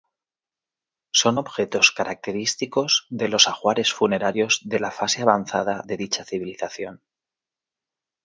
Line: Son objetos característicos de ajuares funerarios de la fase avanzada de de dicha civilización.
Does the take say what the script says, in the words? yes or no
no